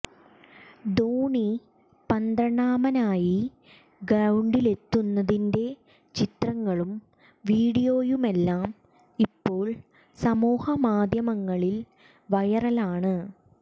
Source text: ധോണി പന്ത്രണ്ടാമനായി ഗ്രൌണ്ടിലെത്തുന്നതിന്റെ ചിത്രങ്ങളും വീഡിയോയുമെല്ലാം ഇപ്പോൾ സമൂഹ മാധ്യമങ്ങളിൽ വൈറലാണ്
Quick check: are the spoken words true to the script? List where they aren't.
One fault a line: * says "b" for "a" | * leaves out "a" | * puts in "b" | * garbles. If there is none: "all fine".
all fine